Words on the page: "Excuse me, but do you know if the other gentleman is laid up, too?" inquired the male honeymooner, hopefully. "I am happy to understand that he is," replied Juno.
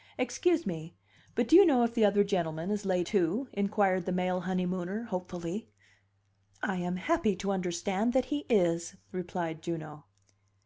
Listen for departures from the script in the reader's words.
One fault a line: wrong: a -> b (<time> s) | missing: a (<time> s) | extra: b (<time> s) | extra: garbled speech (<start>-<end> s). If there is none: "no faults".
missing: up (3.1 s)